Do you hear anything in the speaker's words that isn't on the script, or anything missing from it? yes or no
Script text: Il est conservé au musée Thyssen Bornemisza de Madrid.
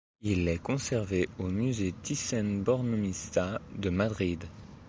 no